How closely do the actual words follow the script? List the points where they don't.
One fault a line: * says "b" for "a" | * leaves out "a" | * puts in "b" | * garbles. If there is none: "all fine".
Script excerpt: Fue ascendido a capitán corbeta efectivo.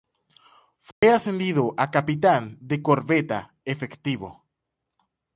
* puts in "de"